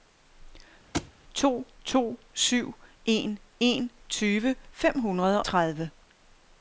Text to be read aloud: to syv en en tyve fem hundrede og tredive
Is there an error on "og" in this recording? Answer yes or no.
yes